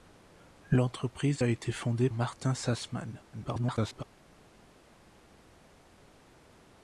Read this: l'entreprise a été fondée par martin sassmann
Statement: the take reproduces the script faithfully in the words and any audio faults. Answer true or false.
false